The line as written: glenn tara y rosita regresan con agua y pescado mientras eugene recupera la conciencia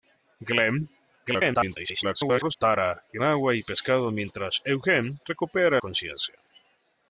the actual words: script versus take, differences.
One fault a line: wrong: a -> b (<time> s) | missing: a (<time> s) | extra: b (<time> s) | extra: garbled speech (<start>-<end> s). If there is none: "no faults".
extra: garbled speech (1.3-2.6 s)
missing: rosita regresan con (3.2 s)
missing: la (5.8 s)